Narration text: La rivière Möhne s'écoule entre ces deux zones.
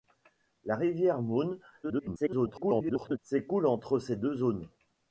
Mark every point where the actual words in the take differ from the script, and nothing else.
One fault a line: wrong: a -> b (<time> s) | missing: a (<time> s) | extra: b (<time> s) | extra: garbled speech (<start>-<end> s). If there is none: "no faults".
extra: garbled speech (1.8-3.2 s)